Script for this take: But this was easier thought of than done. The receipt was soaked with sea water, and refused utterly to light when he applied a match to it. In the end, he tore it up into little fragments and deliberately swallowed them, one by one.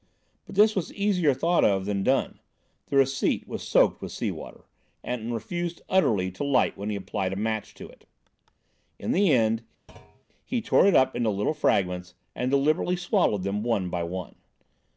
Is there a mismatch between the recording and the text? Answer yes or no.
no